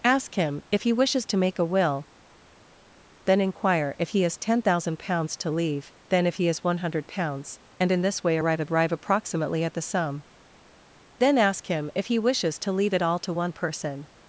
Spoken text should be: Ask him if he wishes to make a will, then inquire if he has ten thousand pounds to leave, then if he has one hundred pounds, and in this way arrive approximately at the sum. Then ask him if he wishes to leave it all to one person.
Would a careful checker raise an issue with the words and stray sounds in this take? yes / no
yes